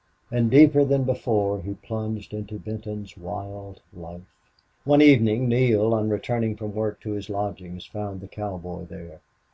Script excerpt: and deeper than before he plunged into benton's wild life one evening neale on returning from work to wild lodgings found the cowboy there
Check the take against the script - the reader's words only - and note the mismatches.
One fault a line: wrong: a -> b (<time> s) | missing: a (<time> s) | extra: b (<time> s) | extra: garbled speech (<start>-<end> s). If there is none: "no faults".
wrong: wild -> his (7.1 s)